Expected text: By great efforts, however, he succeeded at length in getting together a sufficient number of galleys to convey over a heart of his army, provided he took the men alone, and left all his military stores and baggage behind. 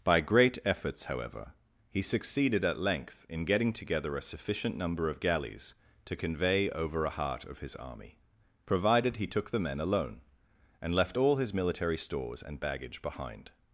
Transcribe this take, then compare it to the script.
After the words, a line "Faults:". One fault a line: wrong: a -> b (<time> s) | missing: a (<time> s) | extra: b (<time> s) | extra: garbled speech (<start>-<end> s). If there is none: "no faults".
By great efforts, however, he succeeded at length in getting together a sufficient number of galleys to convey over a heart of his army, provided he took the men alone, and left all his military stores and baggage behind.
Faults:
no faults